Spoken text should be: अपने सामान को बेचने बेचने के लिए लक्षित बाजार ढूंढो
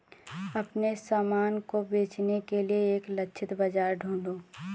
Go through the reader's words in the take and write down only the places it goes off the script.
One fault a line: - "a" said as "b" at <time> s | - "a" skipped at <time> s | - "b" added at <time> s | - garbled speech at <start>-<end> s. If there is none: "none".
- "बेचने" skipped at 2.4 s
- "एक" added at 3.0 s